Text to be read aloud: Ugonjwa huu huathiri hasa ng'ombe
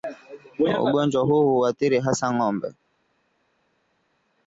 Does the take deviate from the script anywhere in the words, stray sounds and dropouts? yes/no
no